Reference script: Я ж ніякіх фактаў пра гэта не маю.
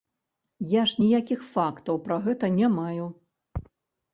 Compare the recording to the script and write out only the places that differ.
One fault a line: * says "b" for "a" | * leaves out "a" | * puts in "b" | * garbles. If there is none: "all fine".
all fine